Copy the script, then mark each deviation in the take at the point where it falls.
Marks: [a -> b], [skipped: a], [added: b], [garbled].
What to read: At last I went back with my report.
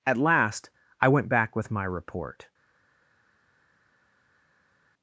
At last I went back with my report.